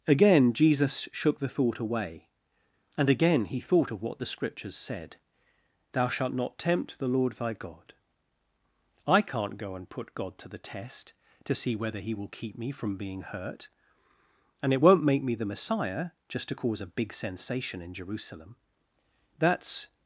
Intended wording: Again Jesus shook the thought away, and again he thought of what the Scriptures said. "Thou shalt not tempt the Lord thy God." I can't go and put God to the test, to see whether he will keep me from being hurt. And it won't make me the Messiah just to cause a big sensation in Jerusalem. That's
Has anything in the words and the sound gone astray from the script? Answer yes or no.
no